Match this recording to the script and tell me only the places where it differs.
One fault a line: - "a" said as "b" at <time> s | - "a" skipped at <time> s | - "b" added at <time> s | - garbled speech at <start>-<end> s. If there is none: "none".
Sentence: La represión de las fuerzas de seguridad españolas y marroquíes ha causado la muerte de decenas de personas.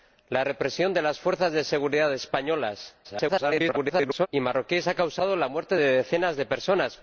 - garbled speech at 3.0-4.3 s